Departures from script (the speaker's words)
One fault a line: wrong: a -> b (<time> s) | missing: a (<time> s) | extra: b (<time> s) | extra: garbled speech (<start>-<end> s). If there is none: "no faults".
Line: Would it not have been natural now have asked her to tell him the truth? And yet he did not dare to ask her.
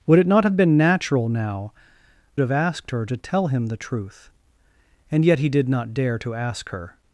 no faults